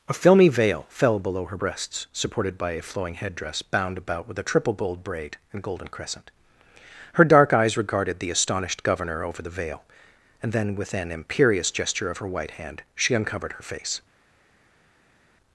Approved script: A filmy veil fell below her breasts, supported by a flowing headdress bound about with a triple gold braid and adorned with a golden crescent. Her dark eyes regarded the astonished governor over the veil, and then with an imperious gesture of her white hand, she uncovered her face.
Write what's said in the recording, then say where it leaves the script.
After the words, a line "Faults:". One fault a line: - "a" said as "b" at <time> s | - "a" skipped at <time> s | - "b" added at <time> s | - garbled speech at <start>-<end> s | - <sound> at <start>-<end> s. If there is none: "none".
A filmy veil fell below her breasts, supported by a flowing headdress bound about with a triple gold braid and golden crescent. Her dark eyes regarded the astonished governor over the veil, and then with an imperious gesture of her white hand, she uncovered her face.
Faults:
- "adorned with a" skipped at 5.6 s